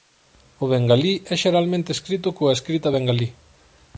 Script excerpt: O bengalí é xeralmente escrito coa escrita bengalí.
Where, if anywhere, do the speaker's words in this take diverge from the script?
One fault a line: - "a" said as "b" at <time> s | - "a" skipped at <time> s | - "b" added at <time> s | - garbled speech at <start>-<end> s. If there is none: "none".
none